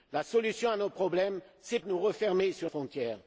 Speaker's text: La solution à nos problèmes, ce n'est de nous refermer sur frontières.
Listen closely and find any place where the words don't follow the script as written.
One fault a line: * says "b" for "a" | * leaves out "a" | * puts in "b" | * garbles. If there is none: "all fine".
all fine